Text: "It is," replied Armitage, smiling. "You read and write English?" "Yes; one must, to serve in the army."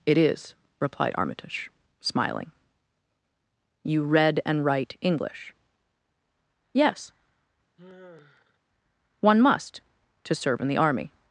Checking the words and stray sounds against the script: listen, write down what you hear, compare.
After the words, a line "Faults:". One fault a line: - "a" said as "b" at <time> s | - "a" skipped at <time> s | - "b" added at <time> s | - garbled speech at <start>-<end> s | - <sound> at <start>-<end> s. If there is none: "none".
"It is," replied Armitage, smiling. "You read and write English?" "Yes; one must, to serve in the army."
Faults:
- sigh at 7.8-8.6 s